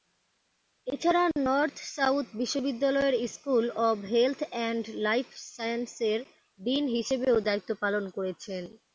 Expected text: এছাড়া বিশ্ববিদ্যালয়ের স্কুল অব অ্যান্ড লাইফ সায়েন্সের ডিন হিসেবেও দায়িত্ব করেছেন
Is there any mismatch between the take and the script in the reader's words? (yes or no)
yes